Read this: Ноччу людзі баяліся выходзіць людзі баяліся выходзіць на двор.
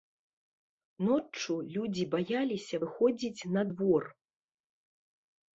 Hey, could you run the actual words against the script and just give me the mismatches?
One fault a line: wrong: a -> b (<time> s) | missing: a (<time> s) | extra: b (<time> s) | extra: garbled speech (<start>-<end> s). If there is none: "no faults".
missing: людзі баяліся выходзіць (3.5 s)